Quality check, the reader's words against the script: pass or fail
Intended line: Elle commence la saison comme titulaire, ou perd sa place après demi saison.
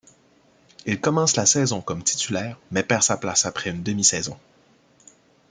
fail